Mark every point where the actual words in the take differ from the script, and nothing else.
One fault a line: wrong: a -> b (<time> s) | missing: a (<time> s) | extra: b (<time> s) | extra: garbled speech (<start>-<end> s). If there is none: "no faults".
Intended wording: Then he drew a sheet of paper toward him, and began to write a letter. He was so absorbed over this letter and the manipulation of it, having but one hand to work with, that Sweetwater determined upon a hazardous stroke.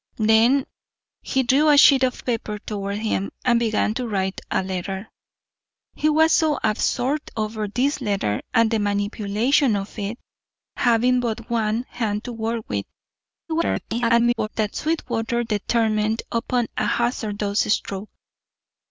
extra: garbled speech (13.5-14.5 s)